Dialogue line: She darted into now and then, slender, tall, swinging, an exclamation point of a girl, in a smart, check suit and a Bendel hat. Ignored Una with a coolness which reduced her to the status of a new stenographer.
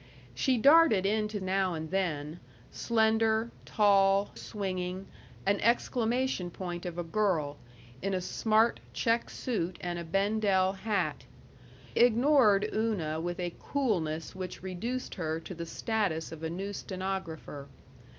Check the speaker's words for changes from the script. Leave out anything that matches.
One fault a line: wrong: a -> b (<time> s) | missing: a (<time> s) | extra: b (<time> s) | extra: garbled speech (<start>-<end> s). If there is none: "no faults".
no faults